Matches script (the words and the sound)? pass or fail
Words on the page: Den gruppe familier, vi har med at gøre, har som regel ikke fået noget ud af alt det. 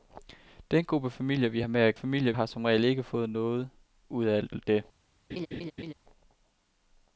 fail